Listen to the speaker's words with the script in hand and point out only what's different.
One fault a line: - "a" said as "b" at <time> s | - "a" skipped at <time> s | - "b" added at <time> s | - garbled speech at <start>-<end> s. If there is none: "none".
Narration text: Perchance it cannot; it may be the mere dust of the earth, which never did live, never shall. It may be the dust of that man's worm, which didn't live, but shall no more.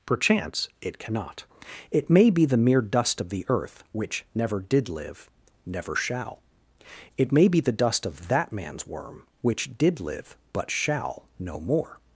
- "didn't" said as "did" at 9.8 s